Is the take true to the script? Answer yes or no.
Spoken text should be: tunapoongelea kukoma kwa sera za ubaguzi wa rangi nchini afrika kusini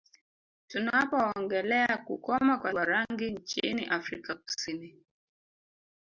no